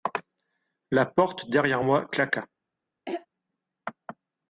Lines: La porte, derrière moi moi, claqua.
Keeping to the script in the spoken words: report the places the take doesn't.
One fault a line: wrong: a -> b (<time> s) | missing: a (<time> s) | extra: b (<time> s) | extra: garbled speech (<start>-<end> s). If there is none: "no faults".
missing: moi (2.1 s)